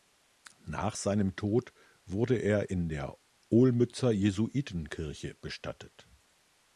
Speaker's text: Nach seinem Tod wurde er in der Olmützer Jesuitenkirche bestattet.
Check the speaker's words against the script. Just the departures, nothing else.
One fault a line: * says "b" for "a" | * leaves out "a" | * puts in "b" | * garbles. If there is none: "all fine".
all fine